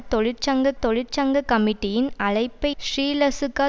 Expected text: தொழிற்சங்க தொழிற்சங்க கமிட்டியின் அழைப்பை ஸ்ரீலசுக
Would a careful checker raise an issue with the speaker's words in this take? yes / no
no